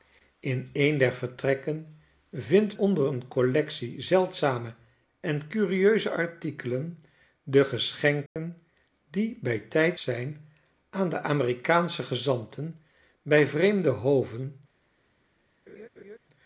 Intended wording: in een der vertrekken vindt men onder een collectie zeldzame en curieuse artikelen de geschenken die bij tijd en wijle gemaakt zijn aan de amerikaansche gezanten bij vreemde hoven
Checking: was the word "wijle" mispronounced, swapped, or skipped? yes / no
yes